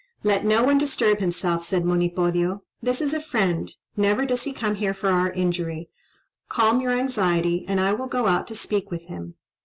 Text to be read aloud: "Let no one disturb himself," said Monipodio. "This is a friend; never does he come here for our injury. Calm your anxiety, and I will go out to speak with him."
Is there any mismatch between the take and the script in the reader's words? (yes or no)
no